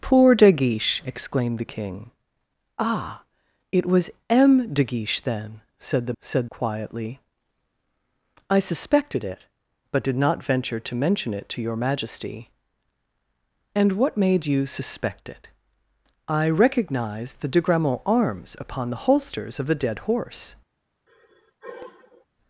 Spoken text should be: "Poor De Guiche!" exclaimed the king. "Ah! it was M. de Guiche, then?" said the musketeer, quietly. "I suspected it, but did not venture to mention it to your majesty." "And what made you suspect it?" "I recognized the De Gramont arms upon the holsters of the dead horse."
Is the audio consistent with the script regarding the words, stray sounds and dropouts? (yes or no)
no